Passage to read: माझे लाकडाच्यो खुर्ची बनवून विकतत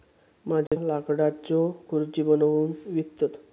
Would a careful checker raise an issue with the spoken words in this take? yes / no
no